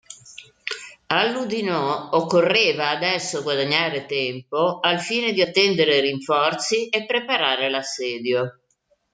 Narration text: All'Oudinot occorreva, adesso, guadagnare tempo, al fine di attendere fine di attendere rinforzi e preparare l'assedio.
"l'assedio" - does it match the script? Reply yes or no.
yes